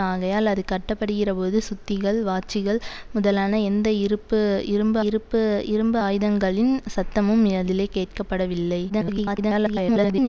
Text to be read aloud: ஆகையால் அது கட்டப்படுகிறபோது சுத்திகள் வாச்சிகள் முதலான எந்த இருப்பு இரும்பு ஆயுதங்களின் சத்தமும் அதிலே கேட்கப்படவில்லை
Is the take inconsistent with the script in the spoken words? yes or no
yes